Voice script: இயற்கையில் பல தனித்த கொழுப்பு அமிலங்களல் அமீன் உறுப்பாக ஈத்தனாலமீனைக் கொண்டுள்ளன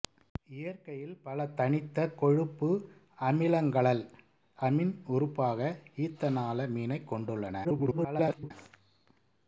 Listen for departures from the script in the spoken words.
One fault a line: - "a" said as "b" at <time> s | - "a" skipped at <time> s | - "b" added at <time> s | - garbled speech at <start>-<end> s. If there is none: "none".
- garbled speech at 7.6-8.5 s